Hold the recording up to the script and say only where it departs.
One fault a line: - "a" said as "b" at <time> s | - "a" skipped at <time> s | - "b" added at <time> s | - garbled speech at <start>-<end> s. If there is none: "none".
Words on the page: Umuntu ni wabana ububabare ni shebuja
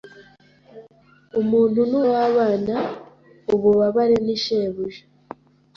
none